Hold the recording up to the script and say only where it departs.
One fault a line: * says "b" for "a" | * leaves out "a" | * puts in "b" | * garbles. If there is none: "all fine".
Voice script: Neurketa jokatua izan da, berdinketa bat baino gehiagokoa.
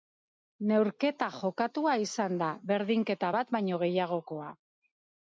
all fine